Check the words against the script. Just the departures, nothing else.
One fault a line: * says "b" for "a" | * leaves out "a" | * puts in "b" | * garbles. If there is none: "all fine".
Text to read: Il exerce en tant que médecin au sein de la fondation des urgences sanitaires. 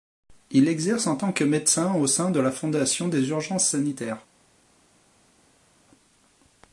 all fine